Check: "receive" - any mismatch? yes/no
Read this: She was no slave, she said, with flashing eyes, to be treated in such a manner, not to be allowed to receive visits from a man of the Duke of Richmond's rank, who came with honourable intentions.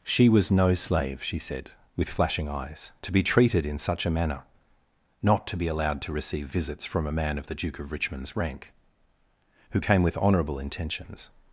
no